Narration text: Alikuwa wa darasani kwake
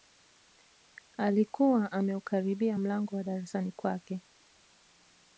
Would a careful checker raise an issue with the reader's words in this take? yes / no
yes